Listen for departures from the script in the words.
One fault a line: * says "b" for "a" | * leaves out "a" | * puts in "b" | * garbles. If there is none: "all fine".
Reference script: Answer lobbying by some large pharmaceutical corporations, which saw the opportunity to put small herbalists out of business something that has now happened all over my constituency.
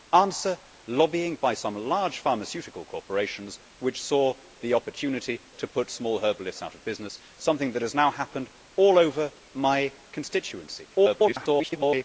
* garbles